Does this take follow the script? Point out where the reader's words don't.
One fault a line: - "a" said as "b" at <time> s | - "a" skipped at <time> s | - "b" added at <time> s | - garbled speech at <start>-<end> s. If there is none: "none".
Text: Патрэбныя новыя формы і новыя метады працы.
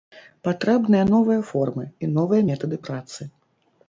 none